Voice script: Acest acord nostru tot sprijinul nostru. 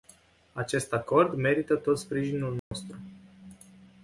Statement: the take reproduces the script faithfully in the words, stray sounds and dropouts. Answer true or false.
false